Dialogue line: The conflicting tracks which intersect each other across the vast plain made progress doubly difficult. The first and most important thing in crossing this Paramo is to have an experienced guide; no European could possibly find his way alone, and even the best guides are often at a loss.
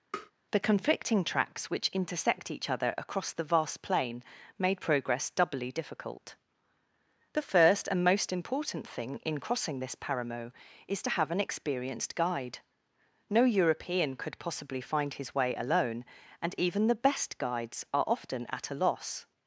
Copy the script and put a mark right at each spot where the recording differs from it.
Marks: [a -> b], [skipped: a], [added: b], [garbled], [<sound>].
[tap] The conflicting tracks which intersect each other across the vast plain made progress doubly difficult. The first and most important thing in crossing this Paramo is to have an experienced guide; no European could possibly find his way alone, and even the best guides are often at a loss.